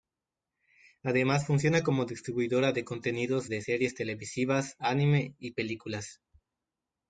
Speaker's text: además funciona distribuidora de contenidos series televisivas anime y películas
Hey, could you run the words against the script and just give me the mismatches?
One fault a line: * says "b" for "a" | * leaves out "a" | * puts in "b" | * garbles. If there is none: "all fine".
* puts in "como"
* puts in "de"